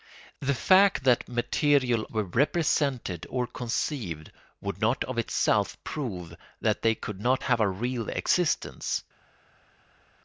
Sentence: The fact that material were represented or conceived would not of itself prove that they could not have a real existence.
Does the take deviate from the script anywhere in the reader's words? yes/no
no